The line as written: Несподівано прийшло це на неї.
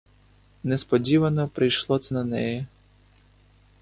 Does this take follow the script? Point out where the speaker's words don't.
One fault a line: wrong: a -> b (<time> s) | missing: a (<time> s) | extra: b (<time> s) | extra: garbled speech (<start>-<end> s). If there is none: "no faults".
no faults